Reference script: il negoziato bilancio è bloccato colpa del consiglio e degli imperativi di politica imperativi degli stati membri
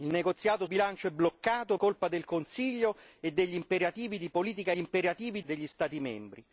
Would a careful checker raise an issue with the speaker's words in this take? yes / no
no